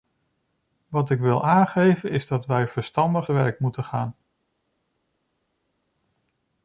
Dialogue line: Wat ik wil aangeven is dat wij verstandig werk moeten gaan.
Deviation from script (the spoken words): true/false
false